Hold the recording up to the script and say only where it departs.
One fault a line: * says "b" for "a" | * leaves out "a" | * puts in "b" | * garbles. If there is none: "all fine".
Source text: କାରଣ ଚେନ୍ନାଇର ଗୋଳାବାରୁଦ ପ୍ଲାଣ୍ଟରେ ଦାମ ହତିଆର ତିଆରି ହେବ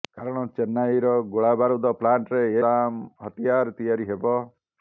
all fine